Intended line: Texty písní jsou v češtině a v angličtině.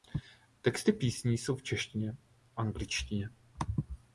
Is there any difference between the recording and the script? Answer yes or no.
yes